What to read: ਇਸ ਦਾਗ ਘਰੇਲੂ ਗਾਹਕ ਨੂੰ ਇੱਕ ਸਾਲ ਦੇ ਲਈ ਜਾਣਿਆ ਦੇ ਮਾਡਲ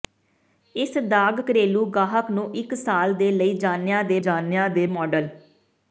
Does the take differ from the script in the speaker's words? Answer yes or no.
yes